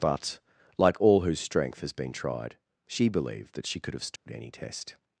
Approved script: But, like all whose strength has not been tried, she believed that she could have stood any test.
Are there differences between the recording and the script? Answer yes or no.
yes